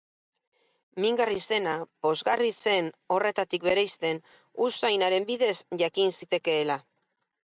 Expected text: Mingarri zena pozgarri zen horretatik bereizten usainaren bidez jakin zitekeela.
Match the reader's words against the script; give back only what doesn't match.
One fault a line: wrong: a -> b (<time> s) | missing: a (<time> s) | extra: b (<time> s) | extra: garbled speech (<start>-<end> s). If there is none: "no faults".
no faults